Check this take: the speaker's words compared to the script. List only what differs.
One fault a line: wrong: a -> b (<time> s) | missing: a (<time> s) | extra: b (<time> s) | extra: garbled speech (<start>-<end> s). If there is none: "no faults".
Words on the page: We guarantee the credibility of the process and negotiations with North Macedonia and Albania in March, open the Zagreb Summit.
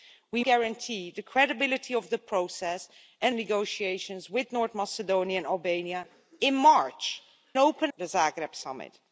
no faults